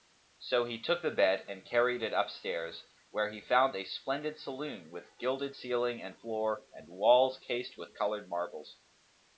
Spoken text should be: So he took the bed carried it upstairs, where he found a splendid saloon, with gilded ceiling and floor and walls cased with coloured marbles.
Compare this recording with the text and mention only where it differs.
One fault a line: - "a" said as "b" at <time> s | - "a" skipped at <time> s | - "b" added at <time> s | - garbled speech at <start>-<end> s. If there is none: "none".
- "and" added at 1.5 s